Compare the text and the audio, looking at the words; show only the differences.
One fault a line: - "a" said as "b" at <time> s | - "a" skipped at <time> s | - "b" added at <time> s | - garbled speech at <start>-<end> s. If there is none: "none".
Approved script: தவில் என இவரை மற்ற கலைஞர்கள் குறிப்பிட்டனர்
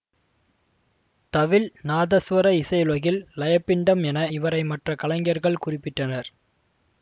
- "நாதசுவர இசையுலகில் லயப்பிண்டம்" added at 1.8 s